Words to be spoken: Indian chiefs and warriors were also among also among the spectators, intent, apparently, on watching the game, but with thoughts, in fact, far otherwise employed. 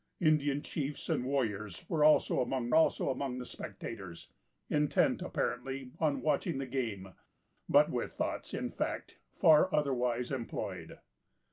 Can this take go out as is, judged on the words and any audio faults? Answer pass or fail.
pass